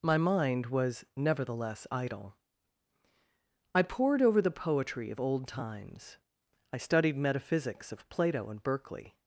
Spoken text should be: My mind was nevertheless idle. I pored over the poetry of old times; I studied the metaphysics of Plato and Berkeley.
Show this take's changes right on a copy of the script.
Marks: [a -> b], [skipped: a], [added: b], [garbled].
My mind was nevertheless idle. I pored over the poetry of old times; I studied [skipped: the] metaphysics of Plato and Berkeley.